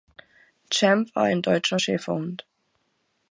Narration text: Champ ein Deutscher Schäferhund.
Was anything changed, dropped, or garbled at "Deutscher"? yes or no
no